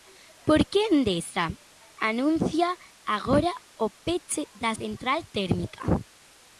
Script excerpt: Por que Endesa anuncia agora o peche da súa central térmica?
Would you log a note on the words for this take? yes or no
yes